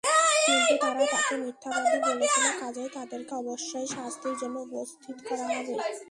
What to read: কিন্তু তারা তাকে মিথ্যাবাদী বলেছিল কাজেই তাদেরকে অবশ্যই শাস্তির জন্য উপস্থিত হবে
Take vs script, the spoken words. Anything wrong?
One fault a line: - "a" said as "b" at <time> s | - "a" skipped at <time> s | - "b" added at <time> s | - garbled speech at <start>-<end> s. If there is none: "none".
- "করা" added at 5.3 s